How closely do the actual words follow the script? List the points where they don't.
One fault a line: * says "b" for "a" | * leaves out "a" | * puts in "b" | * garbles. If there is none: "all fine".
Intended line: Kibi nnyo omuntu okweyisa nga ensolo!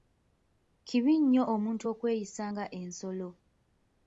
all fine